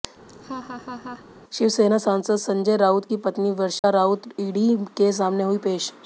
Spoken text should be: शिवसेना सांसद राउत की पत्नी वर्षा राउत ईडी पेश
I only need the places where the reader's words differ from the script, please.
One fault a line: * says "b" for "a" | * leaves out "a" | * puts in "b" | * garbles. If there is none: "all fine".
* puts in "संजय"
* puts in "के सामने हुईं"